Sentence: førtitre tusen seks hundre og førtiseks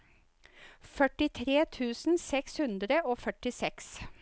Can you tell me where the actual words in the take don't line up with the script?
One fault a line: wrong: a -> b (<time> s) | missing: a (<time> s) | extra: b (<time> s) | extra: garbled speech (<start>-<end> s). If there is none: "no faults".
no faults